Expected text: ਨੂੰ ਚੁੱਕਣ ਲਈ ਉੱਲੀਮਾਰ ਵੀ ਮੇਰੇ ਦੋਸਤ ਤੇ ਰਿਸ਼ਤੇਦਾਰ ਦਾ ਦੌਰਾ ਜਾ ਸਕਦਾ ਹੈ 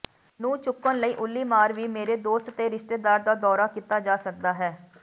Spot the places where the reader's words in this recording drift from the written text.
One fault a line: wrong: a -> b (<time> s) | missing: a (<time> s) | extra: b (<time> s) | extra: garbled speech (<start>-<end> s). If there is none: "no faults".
extra: ਕੀਤਾ (3.7 s)